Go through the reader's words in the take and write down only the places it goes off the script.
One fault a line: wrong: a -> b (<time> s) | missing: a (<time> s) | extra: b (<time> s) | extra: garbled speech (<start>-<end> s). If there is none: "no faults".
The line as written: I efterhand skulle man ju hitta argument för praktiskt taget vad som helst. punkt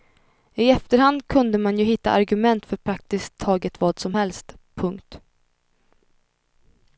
wrong: skulle -> kunde (1.3 s)